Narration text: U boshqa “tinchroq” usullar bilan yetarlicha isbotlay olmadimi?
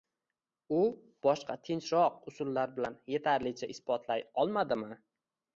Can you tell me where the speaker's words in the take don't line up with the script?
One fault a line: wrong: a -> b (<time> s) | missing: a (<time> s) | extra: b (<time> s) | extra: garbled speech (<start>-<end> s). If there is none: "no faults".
no faults